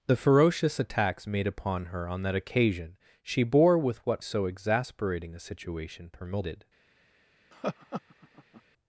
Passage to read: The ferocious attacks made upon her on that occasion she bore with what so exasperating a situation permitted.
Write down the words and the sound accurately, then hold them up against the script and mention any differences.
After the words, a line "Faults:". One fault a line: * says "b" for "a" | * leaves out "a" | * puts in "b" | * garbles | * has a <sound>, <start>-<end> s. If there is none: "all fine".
The ferocious attacks made upon her on that occasion she bore with what so exasperating a situation permitted.
Faults:
* has a laugh, 7.5-8.6 s